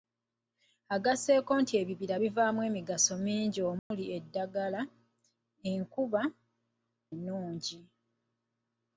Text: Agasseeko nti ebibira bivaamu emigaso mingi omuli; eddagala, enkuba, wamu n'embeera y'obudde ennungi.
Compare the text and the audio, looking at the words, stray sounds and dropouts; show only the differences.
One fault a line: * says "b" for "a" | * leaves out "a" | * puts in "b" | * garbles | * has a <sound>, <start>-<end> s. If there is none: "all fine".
* has a dropout, 3.8-3.9 s
* leaves out "wamu n'embeera y'obudde"